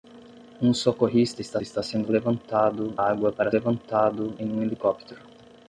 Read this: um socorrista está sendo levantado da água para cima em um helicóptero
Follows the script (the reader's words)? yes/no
no